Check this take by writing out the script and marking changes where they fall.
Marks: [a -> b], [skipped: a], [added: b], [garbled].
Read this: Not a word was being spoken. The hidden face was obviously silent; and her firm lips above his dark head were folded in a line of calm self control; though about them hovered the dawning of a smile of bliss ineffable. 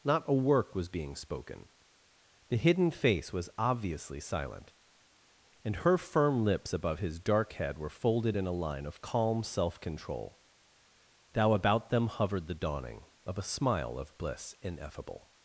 Not a [word -> work] was being spoken. The hidden face was obviously silent; and her firm lips above his dark head were folded in a line of calm self control; [though -> thou] about them hovered the dawning of a smile of bliss ineffable.